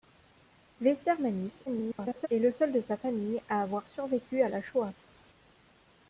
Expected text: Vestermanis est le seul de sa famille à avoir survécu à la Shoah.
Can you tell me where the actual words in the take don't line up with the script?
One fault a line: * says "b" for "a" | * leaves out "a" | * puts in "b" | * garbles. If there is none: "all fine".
* garbles